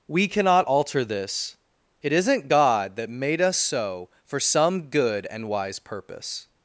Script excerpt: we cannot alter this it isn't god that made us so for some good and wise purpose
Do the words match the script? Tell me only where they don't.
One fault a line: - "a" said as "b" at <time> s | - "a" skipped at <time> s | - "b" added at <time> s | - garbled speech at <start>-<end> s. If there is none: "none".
none